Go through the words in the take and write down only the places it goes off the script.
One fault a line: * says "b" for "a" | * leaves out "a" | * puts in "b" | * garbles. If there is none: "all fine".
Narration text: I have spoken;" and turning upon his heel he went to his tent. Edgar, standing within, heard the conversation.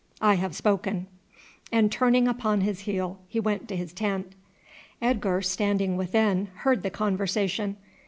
all fine